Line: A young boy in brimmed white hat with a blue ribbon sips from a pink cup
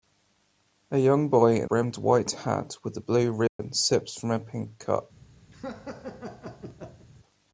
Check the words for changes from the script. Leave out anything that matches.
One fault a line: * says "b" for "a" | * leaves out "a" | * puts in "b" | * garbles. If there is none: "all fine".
all fine